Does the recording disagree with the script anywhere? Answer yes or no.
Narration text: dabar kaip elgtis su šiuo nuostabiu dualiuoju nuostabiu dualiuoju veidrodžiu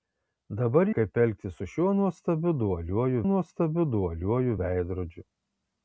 no